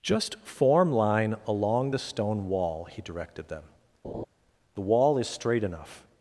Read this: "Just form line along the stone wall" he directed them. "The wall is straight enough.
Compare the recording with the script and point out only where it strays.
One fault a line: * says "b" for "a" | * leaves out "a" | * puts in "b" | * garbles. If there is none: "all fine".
all fine